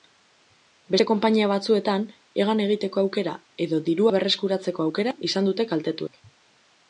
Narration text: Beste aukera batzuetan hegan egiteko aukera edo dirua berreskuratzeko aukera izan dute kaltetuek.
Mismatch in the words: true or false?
true